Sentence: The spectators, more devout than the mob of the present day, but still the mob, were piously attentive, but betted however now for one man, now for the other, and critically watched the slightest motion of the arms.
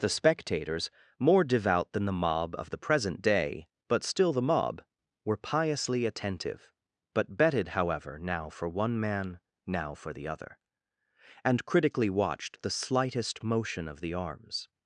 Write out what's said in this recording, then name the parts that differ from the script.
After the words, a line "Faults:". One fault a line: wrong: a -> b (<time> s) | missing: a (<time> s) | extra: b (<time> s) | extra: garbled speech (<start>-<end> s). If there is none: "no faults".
The spectators, more devout than the mob of the present day, but still the mob, were piously attentive, but betted however now for one man, now for the other, and critically watched the slightest motion of the arms.
Faults:
no faults